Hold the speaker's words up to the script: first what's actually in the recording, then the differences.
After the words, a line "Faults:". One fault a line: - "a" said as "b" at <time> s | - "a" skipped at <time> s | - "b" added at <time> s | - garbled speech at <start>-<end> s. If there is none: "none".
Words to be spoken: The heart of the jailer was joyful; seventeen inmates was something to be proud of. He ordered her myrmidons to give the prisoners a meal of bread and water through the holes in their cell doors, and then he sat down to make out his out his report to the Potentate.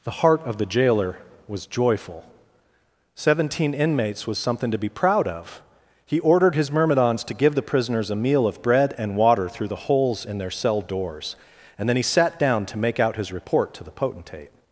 The heart of the jailer was joyful; seventeen inmates was something to be proud of. He ordered his myrmidons to give the prisoners a meal of bread and water through the holes in their cell doors, and then he sat down to make out his report to the Potentate.
Faults:
- "her" said as "his" at 6.5 s
- "out his" skipped at 13.3 s